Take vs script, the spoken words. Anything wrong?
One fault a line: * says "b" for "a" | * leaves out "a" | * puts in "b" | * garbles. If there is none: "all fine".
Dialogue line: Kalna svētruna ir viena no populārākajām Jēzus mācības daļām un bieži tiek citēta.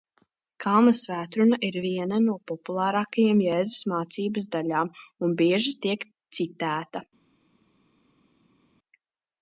all fine